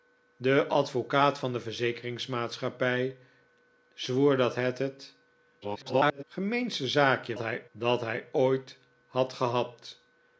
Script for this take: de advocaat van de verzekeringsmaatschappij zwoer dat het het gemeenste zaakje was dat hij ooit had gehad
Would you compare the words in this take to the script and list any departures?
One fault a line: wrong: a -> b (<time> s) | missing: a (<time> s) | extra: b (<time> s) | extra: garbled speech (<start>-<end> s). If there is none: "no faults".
extra: garbled speech (5.6-6.2 s)
wrong: was -> hij (7.4 s)